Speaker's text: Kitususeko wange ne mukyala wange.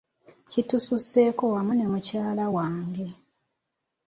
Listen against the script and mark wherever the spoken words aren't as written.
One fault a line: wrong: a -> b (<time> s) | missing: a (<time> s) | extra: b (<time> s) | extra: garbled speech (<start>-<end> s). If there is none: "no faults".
wrong: wange -> wamu (1.5 s)